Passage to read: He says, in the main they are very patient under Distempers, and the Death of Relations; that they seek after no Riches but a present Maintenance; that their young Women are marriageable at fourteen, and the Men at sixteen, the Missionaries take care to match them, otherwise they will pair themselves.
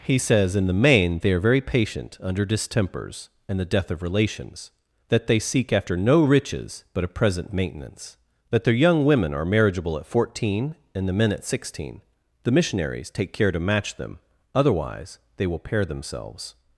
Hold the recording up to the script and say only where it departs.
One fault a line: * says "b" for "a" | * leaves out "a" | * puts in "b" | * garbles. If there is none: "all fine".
all fine